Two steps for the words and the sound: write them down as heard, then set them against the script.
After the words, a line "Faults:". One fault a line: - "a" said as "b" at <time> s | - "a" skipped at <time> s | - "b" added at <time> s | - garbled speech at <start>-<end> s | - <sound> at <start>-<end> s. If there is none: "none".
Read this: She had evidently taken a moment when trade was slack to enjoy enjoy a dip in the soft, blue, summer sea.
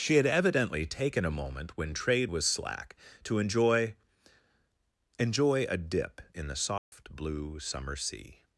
She had evidently taken a moment when trade was slack to enjoy enjoy a dip in the soft, blue, summer sea.
Faults:
- dropout at 6.8-6.9 s